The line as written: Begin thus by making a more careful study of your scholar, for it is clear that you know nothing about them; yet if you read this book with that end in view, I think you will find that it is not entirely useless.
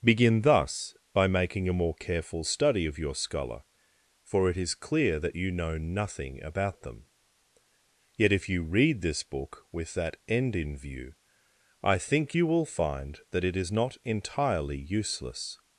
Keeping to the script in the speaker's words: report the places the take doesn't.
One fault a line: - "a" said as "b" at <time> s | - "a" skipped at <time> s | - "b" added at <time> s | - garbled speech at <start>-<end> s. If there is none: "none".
none